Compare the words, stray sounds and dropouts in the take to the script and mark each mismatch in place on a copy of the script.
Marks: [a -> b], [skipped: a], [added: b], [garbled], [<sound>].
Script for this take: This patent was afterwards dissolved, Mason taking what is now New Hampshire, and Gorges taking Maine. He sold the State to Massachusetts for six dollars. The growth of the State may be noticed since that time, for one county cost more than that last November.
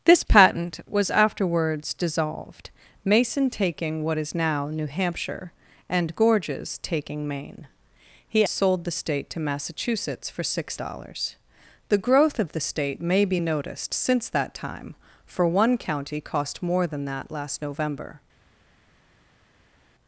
This patent was afterwards dissolved, Mason taking what is now New Hampshire, and Gorges taking Maine. He sold the State to Massachusetts for six dollars. The growth of the State may be noticed since that time, for one county cost more than that last November.